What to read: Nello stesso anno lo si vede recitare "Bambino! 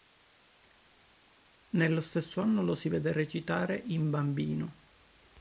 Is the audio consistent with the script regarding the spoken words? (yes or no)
no